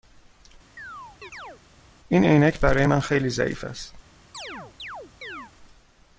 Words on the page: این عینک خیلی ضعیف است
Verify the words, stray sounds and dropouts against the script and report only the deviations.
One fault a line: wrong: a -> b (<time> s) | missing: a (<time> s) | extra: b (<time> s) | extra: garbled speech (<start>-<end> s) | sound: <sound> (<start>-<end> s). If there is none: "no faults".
sound: chirp (0.8-1.6 s)
extra: برای من (2.6 s)
sound: chirp (4.3-5.5 s)